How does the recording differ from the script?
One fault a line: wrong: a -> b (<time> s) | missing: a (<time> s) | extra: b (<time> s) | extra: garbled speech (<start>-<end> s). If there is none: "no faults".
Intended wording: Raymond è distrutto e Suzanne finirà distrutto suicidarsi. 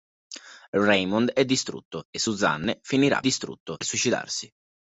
no faults